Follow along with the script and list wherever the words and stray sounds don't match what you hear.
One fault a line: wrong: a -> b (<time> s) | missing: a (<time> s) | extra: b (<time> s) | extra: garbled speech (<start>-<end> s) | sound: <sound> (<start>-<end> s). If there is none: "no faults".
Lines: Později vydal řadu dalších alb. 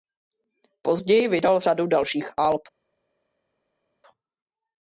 no faults